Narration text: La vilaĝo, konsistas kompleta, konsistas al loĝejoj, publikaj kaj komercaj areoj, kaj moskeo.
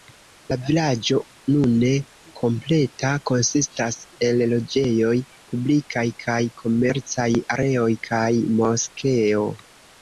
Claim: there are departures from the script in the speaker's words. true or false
true